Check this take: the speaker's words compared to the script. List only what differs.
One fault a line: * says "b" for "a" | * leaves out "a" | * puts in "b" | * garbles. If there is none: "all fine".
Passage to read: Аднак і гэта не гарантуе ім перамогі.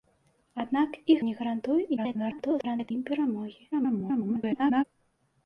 * leaves out "гэта"
* garbles
* garbles